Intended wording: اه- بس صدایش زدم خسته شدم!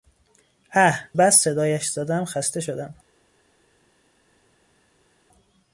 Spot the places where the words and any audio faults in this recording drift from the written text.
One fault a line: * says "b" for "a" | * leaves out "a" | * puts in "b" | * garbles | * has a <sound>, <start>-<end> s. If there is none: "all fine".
all fine